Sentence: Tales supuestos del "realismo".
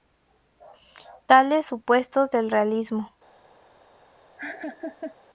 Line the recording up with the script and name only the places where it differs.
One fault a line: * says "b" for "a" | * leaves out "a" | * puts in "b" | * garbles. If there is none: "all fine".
all fine